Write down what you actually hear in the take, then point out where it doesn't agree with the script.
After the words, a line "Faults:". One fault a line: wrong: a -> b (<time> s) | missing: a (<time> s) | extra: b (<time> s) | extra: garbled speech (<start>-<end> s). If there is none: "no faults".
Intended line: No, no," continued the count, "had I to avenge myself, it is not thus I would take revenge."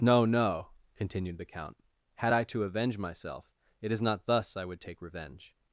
No, no," continued the count, "had I to avenge myself, it is not thus I would take revenge."
Faults:
no faults